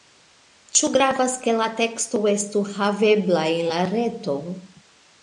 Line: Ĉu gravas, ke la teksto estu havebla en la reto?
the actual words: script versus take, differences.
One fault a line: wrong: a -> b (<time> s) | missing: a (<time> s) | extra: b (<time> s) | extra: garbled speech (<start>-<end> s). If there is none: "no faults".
no faults